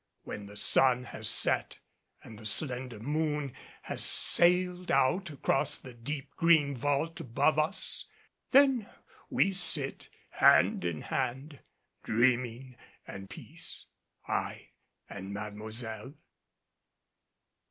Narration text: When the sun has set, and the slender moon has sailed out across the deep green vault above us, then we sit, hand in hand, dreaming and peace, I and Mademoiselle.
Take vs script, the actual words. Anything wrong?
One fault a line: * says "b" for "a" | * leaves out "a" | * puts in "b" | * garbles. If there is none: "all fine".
all fine